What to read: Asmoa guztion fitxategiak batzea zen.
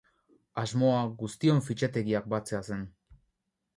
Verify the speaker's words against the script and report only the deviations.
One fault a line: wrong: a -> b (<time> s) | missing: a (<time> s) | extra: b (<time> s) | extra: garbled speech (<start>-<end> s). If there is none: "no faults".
no faults